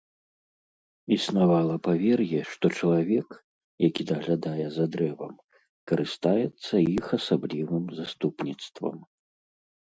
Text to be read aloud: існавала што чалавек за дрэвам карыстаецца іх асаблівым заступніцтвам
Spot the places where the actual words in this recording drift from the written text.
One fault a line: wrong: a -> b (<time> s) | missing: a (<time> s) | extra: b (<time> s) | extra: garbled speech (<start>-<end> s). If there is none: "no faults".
extra: павер'е (1.9 s)
extra: які даглядае (3.9 s)